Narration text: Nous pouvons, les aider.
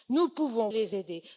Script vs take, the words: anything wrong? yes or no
no